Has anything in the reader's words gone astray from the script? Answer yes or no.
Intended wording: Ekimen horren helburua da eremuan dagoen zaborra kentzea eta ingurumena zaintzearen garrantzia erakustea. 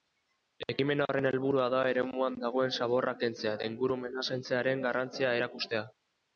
no